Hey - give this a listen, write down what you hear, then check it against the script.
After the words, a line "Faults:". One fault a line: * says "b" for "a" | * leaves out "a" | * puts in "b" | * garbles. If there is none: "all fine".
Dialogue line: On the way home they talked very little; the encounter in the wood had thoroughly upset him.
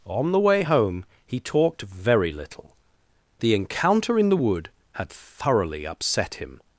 On the way home he talked very little; the encounter in the wood had thoroughly upset him.
Faults:
* says "he" for "they"